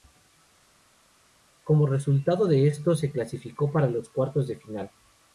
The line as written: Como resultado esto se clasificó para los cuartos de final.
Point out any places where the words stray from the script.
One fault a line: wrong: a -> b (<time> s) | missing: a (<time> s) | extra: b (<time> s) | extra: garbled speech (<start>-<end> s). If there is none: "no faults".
extra: de (2.5 s)